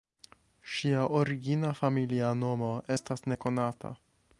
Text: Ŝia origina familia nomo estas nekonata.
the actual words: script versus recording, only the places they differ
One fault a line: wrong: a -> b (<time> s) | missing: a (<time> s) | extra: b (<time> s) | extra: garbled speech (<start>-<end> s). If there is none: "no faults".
no faults